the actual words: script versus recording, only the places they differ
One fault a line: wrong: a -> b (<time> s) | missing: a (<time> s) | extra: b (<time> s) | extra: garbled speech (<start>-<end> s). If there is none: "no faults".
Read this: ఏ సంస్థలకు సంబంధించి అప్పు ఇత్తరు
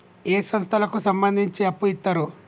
no faults